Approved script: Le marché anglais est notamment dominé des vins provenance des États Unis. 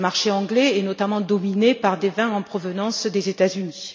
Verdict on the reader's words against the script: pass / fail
fail